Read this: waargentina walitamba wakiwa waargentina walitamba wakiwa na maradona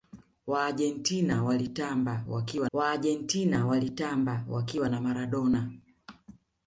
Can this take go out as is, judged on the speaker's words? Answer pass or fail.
pass